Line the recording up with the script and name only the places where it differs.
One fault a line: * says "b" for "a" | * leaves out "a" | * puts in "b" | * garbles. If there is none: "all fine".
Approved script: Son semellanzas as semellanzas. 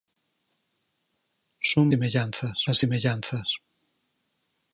all fine